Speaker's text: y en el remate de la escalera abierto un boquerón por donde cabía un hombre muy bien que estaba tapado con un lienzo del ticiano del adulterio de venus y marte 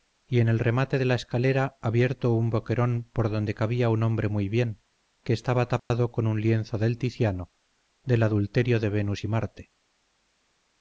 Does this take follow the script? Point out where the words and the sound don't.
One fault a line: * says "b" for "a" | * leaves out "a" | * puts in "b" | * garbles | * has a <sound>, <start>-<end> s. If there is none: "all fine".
* has a dropout, 5.8-5.9 s